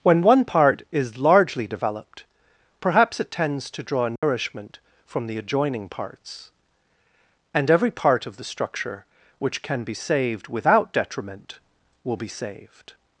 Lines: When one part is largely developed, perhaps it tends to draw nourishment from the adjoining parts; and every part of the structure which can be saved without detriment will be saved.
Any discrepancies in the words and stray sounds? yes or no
yes